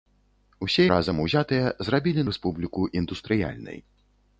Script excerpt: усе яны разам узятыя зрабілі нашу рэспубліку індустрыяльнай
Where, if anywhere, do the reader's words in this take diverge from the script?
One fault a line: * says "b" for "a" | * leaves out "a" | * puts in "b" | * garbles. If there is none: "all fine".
* leaves out "яны"
* leaves out "нашу"